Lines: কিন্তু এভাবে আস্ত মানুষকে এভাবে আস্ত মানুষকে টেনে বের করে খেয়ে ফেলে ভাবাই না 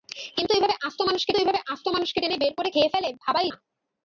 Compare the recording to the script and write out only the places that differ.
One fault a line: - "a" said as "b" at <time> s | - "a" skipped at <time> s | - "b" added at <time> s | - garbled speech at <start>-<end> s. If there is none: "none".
none